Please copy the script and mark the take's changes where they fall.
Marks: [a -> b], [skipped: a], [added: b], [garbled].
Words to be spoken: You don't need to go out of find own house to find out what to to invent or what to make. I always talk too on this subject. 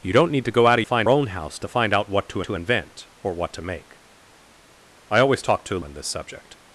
You don't need to go out of find own house to find out what to to invent or what to make. I always talk too on this subject.